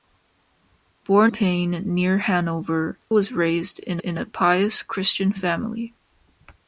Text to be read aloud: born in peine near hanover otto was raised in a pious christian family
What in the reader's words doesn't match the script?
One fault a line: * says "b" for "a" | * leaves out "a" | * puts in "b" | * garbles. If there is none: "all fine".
* leaves out "in"
* leaves out "otto"
* puts in "in"